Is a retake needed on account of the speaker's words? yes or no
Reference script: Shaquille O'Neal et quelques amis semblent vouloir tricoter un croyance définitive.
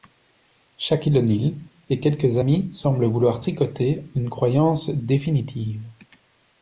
yes